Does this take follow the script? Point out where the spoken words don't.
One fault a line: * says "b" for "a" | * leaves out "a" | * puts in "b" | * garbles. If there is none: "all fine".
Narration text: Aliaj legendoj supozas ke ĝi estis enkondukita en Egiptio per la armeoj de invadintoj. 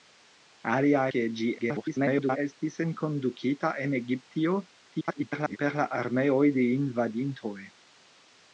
* leaves out "legendoj supozas"
* garbles
* garbles